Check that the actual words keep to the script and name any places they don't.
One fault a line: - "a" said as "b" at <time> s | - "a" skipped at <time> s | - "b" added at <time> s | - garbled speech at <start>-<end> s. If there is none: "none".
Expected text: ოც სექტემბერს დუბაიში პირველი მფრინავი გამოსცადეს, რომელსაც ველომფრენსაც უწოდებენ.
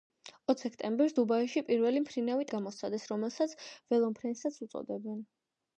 none